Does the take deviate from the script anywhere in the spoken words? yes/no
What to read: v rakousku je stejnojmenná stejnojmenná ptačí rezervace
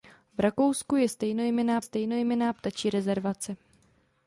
no